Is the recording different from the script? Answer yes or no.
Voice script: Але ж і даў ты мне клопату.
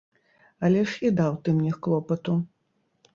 no